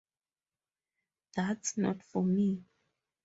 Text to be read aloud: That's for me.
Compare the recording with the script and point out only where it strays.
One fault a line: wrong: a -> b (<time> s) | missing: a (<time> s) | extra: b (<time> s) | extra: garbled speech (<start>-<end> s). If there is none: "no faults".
extra: not (1.8 s)